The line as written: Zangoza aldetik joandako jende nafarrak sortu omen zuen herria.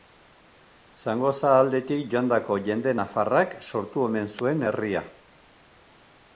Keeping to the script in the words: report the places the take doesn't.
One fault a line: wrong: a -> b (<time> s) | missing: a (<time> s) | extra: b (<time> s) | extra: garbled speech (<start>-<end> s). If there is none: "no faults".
no faults